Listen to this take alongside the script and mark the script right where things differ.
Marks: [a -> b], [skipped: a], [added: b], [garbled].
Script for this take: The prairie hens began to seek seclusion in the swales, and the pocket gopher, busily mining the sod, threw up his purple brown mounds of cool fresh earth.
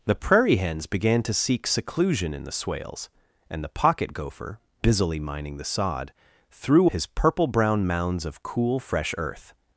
The prairie hens began to seek seclusion in the swales, and the pocket gopher, busily mining the sod, threw [skipped: up] his purple brown mounds of cool fresh earth.